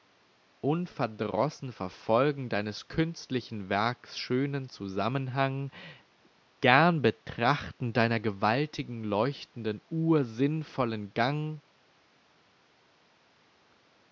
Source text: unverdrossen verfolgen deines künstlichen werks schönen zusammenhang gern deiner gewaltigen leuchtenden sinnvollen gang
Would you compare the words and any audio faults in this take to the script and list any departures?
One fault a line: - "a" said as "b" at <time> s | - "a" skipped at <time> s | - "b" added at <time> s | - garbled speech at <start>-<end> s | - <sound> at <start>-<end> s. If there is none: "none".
- "betrachten" added at 7.0 s
- "uhr" added at 9.9 s